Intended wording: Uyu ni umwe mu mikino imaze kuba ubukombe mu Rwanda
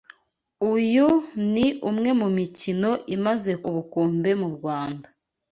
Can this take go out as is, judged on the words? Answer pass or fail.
fail